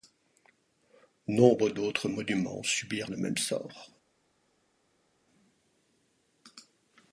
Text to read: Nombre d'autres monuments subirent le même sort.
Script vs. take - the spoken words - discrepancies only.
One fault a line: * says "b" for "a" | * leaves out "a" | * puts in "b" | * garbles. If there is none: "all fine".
all fine